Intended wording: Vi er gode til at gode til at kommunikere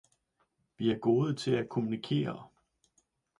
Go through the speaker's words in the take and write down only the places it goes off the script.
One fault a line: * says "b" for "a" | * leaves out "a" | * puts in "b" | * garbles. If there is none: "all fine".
* leaves out "gode til at"